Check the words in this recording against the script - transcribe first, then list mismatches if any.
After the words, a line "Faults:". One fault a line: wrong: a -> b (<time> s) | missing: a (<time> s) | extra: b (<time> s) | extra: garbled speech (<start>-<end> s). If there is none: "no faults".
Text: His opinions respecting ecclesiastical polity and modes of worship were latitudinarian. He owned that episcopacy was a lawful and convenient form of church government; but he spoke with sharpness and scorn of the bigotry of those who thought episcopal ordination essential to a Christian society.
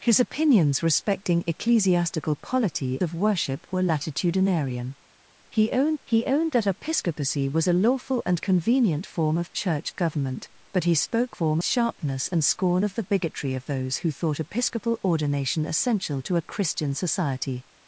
His opinions respecting ecclesiastical polity of worship were latitudinarian. He owned he owned that episcopacy was a lawful and convenient form of church government; but he spoke form sharpness and scorn of the bigotry of those who thought episcopal ordination essential to a Christian society.
Faults:
missing: and modes (3.0 s)
extra: he owned (6.1 s)
wrong: with -> form (11.3 s)